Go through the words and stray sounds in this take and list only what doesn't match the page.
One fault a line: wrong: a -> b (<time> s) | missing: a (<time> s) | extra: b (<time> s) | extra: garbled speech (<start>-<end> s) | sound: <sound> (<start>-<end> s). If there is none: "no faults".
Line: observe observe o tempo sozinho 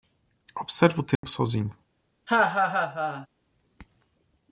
missing: observe (1.0 s)
sound: dropout (1.2-1.2 s)
sound: laugh (2.3-3.3 s)